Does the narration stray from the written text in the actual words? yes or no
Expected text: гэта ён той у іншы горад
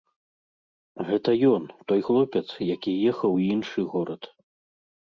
yes